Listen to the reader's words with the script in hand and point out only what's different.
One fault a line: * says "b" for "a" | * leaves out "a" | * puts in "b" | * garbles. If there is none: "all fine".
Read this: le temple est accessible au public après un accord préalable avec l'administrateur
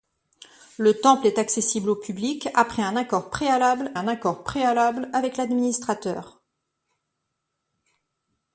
* puts in "un accord préalable"